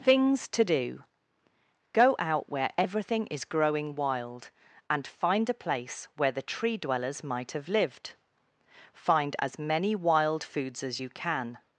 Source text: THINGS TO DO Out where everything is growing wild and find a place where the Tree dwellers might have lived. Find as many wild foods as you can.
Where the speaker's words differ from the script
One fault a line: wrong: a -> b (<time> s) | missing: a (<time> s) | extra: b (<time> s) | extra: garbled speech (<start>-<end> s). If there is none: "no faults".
extra: Go (1.9 s)